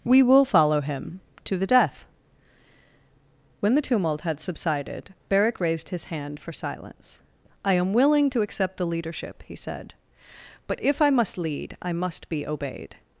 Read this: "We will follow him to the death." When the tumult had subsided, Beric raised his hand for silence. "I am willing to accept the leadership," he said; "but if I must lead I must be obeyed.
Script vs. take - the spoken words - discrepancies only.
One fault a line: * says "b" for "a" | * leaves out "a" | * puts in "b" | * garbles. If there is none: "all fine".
all fine